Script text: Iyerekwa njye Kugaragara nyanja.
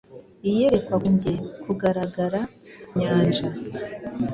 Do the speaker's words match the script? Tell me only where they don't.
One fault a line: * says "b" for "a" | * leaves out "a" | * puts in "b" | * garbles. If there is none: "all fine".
all fine